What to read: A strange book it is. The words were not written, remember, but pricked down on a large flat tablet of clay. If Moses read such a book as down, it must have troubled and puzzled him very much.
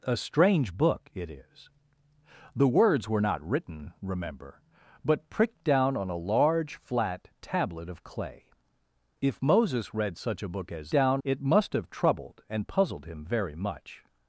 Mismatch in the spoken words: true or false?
false